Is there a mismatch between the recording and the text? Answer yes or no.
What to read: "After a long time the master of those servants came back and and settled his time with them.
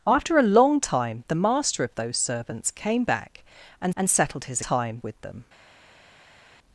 no